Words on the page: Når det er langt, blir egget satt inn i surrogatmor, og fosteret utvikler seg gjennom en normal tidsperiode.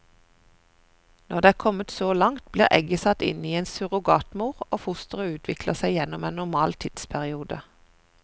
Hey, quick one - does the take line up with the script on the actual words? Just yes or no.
no